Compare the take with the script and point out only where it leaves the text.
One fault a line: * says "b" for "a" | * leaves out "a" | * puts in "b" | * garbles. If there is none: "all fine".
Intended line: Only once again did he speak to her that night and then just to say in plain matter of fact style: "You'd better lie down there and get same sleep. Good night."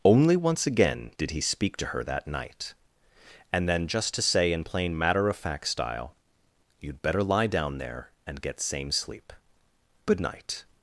all fine